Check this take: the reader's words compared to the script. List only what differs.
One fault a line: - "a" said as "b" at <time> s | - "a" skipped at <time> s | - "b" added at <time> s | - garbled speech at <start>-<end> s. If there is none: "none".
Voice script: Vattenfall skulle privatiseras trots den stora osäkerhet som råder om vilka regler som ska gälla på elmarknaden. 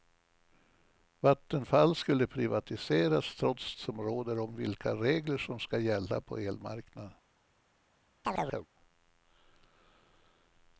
- "den stora osäkerhet" skipped at 3.8 s